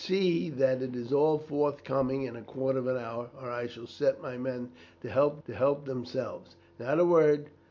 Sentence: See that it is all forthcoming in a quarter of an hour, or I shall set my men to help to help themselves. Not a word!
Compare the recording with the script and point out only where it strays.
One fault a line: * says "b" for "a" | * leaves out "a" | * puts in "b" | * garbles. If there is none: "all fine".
all fine